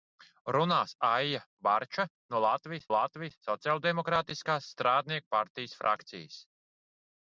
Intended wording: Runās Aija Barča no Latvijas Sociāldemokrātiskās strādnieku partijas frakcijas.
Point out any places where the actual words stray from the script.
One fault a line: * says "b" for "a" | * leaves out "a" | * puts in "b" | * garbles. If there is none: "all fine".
* puts in "Latvijas"